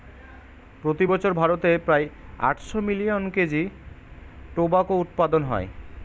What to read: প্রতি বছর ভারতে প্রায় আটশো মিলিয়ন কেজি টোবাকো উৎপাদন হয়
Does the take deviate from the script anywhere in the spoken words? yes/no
no